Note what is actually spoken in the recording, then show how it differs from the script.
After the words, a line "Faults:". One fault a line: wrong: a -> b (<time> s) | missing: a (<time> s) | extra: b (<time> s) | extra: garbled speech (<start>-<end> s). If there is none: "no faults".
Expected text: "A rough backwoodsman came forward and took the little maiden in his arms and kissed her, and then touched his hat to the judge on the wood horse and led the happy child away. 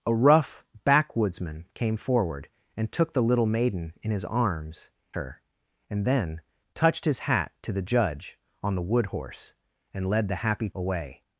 "A rough backwoodsman came forward and took the little maiden in his arms her, and then touched his hat to the judge on the wood horse and led the happy away.
Faults:
missing: and kissed (4.9 s)
missing: child (10.7 s)